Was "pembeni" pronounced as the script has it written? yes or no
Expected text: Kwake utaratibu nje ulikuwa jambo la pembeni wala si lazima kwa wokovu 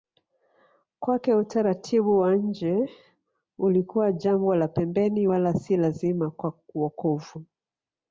yes